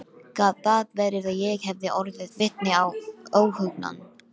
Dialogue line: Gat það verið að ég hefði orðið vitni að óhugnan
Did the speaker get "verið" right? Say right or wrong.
right